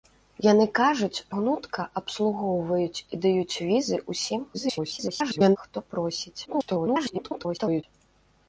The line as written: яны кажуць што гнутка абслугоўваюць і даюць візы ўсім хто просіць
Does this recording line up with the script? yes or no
no